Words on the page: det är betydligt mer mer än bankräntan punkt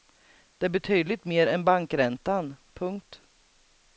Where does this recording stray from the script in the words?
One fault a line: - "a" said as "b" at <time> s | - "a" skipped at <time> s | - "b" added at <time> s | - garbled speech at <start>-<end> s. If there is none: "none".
- "mer" skipped at 1.5 s